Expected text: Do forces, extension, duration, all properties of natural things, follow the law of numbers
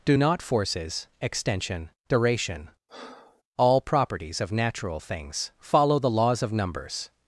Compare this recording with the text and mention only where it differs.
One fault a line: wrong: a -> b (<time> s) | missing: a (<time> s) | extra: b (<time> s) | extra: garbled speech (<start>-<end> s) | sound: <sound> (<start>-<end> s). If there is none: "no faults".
extra: not (0.1 s)
sound: breath (2.9-3.4 s)
wrong: law -> laws (6.1 s)